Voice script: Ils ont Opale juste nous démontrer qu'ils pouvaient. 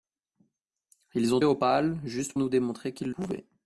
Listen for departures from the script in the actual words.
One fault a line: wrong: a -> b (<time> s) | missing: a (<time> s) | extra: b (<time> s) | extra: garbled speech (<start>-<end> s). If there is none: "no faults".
no faults